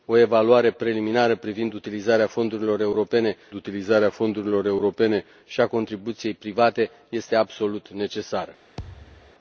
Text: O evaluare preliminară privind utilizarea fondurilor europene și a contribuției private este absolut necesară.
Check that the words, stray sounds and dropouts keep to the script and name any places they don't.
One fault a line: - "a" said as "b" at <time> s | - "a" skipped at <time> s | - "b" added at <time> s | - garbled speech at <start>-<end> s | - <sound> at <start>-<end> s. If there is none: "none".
- "utilizarea fondurilor europene" added at 3.5 s
- thud at 8.8-9.3 s